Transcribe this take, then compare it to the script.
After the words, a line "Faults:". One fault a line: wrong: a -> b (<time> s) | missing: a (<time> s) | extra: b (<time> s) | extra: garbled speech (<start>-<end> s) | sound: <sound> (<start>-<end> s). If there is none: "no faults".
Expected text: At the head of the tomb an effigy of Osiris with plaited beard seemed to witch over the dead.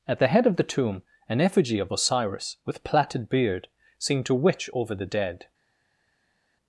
At the head of the tomb an effigy of Osiris with plaited beard seemed to witch over the dead.
Faults:
no faults